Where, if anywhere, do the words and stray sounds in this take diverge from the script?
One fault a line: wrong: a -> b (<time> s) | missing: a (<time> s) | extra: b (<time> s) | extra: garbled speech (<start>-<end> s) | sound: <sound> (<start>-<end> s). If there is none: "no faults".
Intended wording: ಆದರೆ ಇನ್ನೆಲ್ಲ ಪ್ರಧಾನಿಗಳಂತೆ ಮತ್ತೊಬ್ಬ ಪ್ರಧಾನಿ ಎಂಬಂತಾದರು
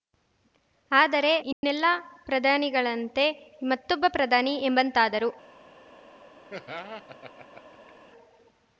sound: dropout (1.5-1.6 s)
sound: laugh (6.5-7.9 s)